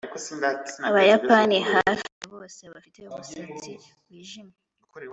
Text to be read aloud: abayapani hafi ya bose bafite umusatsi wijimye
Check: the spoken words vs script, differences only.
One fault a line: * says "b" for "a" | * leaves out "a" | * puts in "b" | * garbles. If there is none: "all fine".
all fine